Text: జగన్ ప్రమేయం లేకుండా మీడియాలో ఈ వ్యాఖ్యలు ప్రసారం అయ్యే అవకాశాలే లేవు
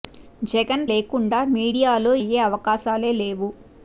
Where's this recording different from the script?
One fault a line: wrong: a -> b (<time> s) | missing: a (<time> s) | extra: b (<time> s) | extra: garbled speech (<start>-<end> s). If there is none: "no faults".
missing: ప్రమేయం (0.8 s)
missing: ఈ వ్యాఖ్యలు ప్రసారం (2.1 s)